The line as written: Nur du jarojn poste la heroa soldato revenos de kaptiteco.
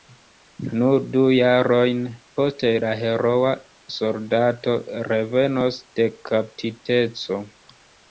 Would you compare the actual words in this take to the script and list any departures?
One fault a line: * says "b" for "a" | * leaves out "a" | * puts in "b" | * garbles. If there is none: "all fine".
all fine